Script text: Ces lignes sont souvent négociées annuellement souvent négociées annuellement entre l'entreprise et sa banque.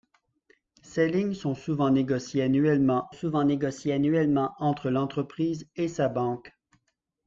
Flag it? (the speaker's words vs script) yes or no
no